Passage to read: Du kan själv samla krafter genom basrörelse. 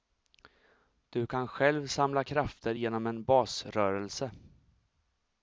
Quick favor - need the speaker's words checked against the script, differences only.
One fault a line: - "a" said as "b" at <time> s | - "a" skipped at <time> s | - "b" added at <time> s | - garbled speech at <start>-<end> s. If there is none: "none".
- "en" added at 3.1 s